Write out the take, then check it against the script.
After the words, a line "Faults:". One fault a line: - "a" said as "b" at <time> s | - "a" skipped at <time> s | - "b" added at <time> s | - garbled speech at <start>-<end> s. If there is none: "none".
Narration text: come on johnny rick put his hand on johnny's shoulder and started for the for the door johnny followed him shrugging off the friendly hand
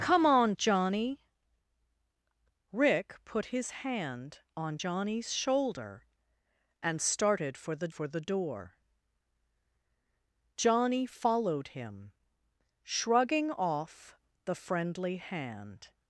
come on johnny rick put his hand on johnny's shoulder and started for the for the door johnny followed him shrugging off the friendly hand
Faults:
none